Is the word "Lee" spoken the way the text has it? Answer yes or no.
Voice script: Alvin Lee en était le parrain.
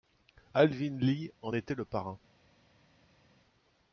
yes